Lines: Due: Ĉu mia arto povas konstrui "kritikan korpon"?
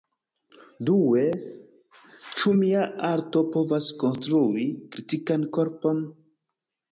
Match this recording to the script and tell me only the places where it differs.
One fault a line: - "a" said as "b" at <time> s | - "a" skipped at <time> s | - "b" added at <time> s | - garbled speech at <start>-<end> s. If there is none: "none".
none